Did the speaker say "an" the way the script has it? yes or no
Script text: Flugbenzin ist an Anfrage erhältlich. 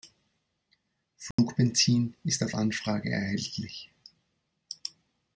no